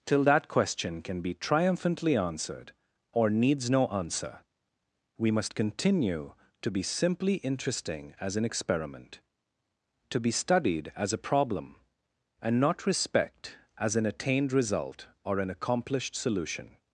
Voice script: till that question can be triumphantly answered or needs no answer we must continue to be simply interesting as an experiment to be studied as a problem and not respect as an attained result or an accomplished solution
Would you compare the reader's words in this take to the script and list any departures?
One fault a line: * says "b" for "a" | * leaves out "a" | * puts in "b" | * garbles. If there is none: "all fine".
all fine